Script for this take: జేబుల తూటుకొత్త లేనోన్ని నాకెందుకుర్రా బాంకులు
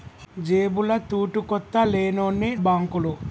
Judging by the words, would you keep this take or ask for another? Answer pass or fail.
fail